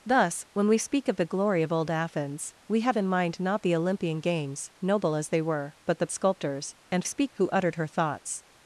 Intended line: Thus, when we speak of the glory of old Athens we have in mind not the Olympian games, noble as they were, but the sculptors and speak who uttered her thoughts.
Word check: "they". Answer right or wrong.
right